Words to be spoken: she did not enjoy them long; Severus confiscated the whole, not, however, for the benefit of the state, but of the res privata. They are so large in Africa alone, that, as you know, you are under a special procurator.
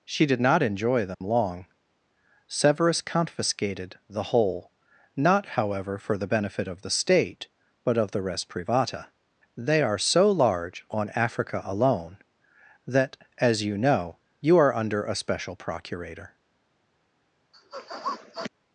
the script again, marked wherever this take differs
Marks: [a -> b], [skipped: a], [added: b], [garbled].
she did not enjoy them long; Severus confiscated the whole, not, however, for the benefit of the state, but of the res privata. They are so large [in -> on] Africa alone, that, as you know, you are under a special procurator.